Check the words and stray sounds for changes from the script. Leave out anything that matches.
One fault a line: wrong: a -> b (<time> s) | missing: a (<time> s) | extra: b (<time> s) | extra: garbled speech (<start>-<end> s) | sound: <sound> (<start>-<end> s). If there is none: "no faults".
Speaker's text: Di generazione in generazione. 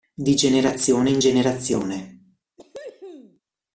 sound: cough (2.6-3.4 s)